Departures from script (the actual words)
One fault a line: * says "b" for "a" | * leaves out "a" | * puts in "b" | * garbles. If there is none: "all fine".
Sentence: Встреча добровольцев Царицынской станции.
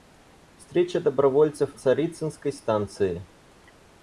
all fine